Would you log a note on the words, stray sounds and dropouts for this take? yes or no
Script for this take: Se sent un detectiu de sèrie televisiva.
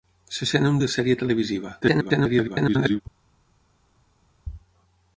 yes